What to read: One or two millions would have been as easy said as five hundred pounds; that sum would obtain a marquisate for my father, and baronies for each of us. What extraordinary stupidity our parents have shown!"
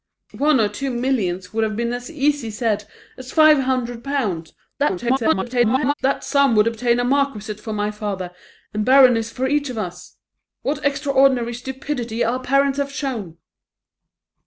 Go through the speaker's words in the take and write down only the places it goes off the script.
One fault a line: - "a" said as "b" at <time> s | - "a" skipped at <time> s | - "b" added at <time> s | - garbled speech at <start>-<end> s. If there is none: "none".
- garbled speech at 4.8-5.9 s